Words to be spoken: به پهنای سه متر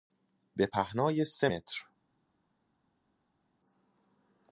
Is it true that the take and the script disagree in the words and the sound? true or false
false